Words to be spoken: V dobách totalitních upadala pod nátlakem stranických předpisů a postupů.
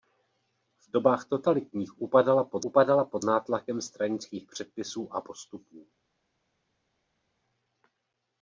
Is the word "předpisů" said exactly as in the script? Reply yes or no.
yes